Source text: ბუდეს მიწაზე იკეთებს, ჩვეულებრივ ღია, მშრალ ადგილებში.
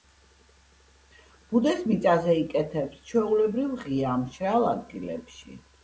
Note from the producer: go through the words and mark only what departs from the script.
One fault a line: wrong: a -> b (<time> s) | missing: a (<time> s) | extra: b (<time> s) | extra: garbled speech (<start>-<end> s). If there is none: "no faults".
no faults